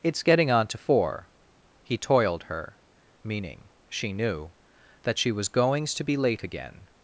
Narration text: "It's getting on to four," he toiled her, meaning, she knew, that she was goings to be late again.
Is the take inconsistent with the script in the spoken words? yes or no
no